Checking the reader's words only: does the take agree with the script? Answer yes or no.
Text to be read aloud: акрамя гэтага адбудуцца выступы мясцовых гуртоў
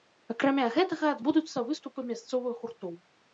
yes